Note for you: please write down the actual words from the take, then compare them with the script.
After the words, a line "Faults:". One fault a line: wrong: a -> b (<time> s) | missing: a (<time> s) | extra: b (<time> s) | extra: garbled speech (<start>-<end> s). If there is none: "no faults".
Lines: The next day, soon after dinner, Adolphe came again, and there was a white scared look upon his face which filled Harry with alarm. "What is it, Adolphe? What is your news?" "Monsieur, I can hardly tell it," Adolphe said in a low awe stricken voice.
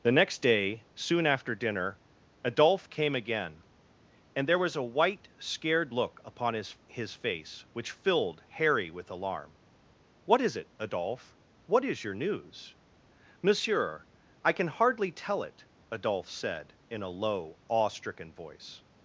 The next day, soon after dinner, Adolphe came again, and there was a white scared look upon his his face which filled Harry with alarm. "What is it, Adolphe? What is your news?" "Monsieur, I can hardly tell it," Adolphe said in a low awe stricken voice.
Faults:
extra: his (6.9 s)